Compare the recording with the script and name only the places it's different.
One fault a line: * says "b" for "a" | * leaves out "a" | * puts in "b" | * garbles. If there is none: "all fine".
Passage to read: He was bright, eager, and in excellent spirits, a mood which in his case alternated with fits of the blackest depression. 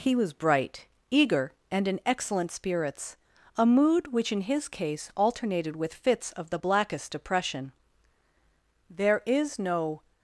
* puts in "There is no"